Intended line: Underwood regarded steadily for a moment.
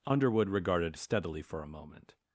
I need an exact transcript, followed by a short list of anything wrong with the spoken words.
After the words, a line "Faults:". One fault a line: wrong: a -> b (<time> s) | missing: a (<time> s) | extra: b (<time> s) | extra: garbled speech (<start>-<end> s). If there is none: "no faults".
Underwood regarded steadily for a moment.
Faults:
no faults